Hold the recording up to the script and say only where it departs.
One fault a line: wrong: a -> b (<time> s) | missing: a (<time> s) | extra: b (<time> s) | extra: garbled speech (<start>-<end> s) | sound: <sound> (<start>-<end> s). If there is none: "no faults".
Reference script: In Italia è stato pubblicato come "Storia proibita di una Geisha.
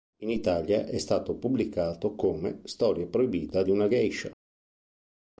no faults